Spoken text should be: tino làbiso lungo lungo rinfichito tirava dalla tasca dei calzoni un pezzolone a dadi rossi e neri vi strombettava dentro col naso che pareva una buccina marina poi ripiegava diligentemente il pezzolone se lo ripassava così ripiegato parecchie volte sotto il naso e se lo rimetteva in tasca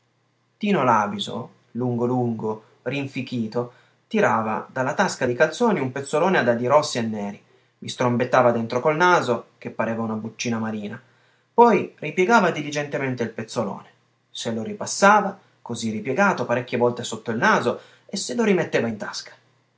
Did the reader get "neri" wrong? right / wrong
right